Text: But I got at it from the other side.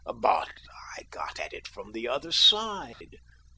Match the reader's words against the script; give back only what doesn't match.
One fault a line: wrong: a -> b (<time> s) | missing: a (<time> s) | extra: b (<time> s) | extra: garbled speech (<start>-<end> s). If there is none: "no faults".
no faults